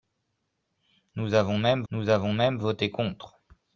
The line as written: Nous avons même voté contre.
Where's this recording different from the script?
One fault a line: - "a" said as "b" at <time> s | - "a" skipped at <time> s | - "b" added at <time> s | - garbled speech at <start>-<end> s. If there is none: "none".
- "nous avons même" added at 1.9 s